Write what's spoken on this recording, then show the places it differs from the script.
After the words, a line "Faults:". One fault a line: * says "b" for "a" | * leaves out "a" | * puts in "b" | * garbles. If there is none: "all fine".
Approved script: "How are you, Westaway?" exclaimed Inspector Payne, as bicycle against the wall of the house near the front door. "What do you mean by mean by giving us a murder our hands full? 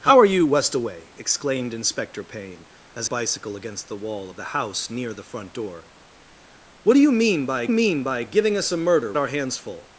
"How are you, Westaway?" exclaimed Inspector Payne, as bicycle against the wall of the house near the front door. "What do you mean by mean by giving us a murder our hands full?
Faults:
all fine